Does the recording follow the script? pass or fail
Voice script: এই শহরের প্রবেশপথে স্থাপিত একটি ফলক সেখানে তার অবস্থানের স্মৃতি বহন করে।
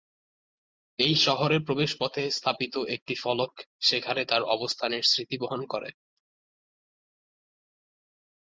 pass